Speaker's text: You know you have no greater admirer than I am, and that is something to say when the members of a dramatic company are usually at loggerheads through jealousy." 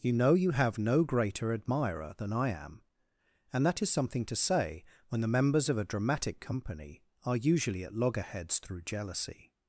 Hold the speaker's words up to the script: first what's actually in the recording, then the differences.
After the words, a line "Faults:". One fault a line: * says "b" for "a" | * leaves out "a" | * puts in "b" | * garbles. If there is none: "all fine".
You know you have no greater admirer than I am, and that is something to say when the members of a dramatic company are usually at loggerheads through jealousy."
Faults:
all fine